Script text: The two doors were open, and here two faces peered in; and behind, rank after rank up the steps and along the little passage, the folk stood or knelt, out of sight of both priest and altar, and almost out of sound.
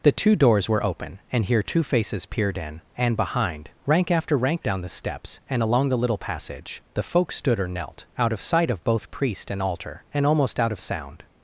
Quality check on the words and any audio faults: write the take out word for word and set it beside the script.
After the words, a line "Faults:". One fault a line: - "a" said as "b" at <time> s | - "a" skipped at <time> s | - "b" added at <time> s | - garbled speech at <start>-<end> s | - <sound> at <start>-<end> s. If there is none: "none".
The two doors were open, and here two faces peered in; and behind, rank after rank down the steps and along the little passage, the folk stood or knelt, out of sight of both priest and altar, and almost out of sound.
Faults:
- "up" said as "down" at 4.6 s